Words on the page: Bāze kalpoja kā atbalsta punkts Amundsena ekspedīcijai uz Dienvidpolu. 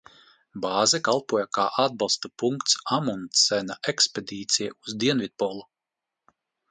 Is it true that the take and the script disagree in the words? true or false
false